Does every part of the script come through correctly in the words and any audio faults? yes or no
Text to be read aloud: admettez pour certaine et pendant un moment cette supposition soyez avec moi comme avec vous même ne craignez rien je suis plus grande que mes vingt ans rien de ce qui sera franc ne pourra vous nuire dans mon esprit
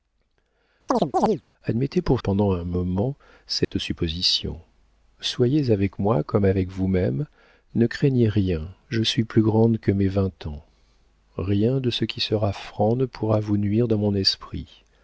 no